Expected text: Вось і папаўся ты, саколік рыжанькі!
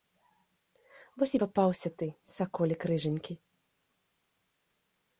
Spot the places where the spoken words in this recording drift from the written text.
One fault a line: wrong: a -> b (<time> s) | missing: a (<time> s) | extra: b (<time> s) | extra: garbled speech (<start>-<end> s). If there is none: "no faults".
no faults